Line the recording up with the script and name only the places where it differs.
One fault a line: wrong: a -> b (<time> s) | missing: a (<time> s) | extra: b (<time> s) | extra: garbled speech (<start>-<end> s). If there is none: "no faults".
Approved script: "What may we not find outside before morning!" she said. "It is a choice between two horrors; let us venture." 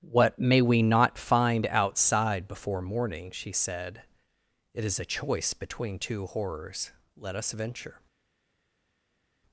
no faults